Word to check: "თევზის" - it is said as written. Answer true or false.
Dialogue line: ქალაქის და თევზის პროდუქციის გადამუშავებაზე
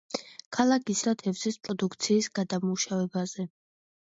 true